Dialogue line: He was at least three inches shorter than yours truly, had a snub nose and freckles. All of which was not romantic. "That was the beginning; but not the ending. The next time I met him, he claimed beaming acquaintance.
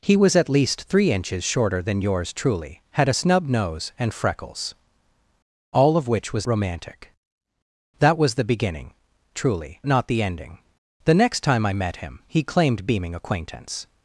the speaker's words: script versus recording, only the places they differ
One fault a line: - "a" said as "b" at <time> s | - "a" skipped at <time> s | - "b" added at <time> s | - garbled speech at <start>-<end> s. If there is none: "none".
- "not" skipped at 6.5 s
- "but" said as "truly" at 9.3 s